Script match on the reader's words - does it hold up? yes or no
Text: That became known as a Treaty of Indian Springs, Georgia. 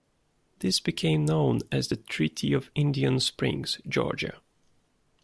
no